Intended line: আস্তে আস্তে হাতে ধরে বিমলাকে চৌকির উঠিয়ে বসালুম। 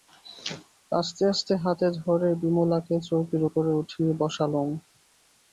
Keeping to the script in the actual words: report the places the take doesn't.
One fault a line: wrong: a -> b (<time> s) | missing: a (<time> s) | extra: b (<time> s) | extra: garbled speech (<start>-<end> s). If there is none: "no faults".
extra: উপরে (3.5 s)